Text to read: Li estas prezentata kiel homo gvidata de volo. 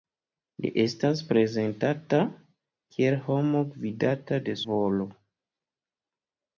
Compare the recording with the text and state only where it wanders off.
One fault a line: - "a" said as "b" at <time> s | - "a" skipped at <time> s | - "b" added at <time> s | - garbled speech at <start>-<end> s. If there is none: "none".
none